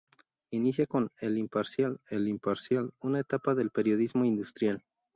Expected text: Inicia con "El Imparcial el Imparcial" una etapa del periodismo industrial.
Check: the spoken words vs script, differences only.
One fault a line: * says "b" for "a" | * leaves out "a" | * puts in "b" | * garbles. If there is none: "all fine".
all fine